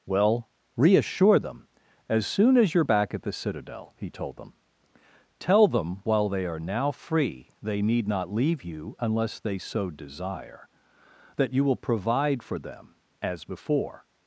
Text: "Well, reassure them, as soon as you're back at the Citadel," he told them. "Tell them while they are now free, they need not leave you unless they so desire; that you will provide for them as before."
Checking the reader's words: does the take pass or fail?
pass